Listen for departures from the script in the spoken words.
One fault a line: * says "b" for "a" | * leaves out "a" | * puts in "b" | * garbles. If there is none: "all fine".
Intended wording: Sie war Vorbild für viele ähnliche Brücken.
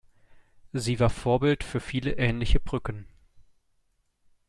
all fine